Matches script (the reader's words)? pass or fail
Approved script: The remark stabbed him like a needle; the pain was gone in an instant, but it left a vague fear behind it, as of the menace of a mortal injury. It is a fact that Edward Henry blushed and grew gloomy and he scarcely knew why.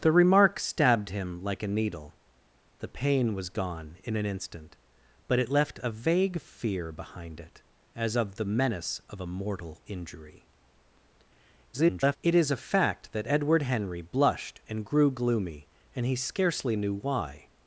fail